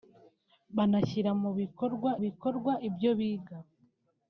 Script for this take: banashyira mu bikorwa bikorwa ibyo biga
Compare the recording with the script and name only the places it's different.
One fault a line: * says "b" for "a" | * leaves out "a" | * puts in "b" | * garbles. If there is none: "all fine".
all fine